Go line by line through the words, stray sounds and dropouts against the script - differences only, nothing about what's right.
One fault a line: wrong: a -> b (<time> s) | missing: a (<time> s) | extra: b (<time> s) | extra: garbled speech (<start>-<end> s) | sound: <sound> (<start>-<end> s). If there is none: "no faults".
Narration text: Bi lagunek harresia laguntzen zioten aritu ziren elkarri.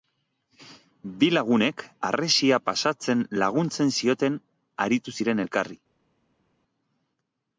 extra: pasatzen (2.7 s)